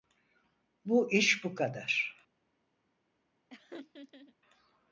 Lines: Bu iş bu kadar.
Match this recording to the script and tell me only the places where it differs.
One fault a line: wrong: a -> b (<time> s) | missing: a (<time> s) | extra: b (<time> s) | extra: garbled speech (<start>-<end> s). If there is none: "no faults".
no faults